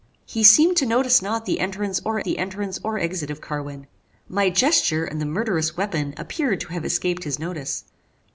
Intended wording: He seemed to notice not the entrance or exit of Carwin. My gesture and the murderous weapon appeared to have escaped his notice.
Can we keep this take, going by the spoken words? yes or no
no